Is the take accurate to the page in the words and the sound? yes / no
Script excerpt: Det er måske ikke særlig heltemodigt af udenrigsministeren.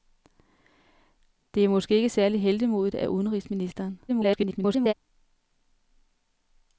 no